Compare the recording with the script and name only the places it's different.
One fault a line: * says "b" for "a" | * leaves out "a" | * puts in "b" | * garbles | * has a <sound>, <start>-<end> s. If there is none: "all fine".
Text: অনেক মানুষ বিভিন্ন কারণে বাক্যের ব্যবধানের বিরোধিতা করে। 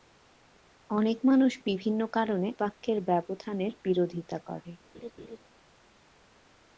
* has a laugh, 4.9-5.4 s